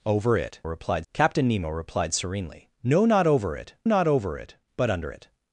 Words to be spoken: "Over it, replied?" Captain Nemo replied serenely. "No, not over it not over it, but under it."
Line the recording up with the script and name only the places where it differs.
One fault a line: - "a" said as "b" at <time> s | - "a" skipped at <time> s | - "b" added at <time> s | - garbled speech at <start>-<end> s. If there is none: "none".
none